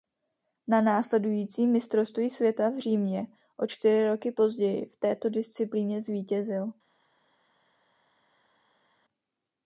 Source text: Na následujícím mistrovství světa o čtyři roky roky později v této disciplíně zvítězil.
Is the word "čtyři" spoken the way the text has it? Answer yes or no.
yes